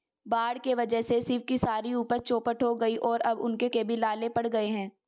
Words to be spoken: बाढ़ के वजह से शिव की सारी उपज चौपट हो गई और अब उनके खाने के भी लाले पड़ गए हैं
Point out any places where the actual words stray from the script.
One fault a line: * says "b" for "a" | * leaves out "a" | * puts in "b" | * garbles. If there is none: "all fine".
* leaves out "खाने"